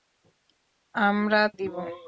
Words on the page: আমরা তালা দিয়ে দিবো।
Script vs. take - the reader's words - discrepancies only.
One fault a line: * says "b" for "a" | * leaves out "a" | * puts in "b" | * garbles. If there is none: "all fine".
* leaves out "তালা দিয়ে"